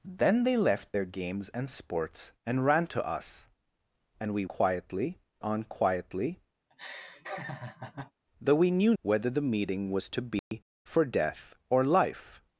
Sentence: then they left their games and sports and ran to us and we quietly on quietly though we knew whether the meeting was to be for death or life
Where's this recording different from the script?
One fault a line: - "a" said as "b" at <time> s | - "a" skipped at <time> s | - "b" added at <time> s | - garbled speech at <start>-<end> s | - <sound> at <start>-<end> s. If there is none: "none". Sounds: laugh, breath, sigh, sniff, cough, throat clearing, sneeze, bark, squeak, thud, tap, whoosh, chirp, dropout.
- laugh at 6.7-8.1 s
- dropout at 10.4-10.5 s